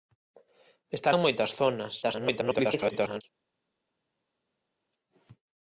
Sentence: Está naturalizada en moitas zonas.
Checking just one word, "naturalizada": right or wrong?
wrong